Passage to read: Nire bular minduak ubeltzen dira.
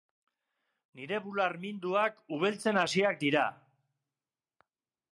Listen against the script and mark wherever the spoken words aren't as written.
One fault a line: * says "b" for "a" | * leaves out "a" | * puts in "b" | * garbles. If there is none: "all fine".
* puts in "hasiak"